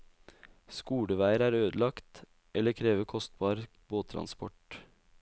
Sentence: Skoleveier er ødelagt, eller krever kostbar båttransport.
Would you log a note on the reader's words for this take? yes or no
no